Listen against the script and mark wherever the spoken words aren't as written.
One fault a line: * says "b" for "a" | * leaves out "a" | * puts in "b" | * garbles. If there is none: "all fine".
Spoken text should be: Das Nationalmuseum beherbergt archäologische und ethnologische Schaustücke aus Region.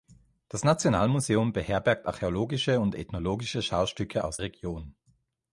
all fine